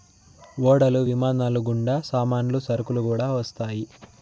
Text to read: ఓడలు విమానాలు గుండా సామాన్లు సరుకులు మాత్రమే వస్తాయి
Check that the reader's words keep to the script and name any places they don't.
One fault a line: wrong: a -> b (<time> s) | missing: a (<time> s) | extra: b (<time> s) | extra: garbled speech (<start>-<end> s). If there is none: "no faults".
wrong: మాత్రమే -> కూడా (3.1 s)